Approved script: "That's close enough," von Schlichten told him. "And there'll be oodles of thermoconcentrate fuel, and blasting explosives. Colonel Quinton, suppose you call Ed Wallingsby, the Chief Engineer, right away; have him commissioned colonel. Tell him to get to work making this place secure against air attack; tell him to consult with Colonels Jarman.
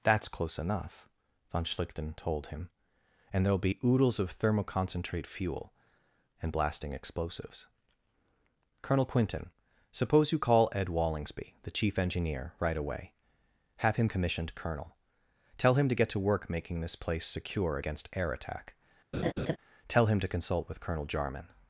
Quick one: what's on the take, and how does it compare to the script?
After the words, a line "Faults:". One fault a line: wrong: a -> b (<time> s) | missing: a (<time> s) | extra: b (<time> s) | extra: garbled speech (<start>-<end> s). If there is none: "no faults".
"That's close enough," von Schlichten told him. "And there'll be oodles of thermoconcentrate fuel, and blasting explosives. Colonel Quinton, suppose you call Ed Wallingsby, the Chief Engineer, right away; have him commissioned colonel. Tell him to get to work making this place secure against air attack; tell him to consult with Colonel Jarman.
Faults:
wrong: Colonels -> Colonel (20.8 s)